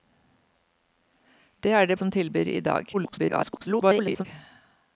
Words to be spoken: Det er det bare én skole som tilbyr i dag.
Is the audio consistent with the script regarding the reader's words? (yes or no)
no